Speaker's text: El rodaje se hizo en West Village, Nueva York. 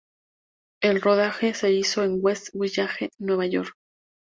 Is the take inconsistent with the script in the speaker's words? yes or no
no